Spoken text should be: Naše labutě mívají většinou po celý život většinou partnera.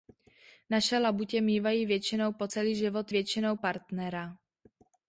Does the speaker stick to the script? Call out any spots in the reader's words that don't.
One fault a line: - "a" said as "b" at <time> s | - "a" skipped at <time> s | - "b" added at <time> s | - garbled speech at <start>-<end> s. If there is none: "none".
none